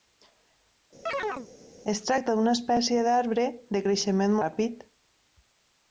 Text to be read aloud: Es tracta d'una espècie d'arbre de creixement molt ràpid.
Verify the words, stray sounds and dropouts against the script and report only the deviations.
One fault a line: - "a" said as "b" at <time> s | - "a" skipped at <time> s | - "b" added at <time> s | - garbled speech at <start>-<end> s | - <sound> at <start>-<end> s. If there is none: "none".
- chirp at 1.1-1.5 s
- "molt" skipped at 4.4 s